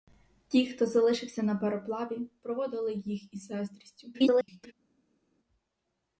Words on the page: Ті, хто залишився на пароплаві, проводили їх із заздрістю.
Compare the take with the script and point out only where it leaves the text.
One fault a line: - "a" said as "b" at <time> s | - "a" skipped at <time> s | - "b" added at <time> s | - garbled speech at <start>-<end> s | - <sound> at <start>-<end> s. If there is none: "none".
- garbled speech at 4.1-4.7 s